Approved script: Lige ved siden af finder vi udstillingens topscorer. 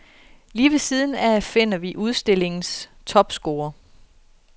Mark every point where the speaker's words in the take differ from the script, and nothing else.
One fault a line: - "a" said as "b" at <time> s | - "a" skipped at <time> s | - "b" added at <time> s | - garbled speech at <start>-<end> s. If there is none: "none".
none